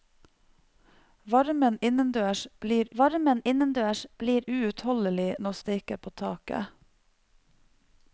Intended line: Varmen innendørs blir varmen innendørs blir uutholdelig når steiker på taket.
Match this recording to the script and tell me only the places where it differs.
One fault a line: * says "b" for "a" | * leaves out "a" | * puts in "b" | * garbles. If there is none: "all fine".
all fine